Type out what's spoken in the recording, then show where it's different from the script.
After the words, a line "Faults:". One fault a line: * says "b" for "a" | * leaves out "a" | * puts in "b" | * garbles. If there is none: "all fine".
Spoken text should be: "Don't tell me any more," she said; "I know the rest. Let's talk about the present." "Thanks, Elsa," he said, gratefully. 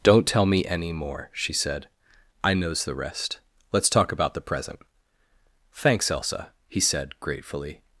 "Don't tell me any more," she said; "I knows the rest. Let's talk about the present." "Thanks, Elsa," he said, gratefully.
Faults:
* says "knows" for "know"